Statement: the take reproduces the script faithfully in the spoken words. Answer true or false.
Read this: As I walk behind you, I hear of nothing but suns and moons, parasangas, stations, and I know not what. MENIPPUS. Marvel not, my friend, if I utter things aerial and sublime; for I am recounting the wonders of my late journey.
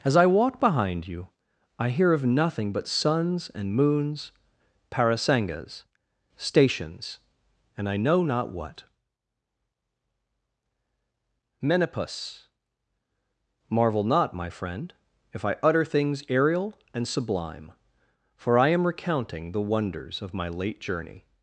true